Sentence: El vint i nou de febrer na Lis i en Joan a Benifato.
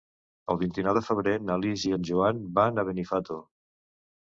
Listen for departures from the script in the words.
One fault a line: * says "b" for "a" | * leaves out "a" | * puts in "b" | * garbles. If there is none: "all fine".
* puts in "van"